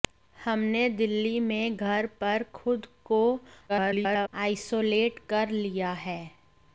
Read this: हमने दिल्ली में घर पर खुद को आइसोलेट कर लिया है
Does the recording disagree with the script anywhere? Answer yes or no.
yes